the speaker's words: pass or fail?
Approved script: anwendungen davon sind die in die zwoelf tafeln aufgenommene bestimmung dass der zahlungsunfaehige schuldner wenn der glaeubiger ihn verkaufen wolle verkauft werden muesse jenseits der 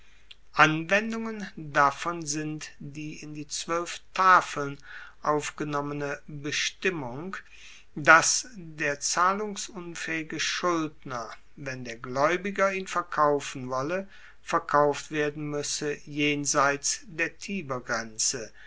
pass